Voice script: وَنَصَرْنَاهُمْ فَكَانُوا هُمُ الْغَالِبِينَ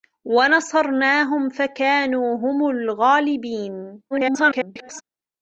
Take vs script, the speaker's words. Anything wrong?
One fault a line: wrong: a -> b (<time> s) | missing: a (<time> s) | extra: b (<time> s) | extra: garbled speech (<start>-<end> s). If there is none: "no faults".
extra: garbled speech (4.1-5.0 s)